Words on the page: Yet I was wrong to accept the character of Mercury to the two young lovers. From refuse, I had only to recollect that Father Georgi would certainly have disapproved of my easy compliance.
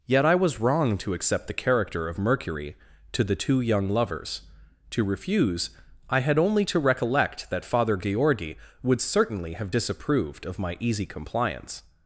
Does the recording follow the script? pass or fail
fail